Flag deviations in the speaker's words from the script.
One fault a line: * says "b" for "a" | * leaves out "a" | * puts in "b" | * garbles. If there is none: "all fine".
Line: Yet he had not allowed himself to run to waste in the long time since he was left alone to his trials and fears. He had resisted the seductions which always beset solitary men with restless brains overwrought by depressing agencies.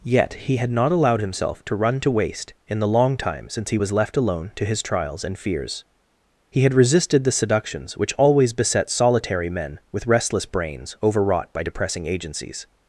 all fine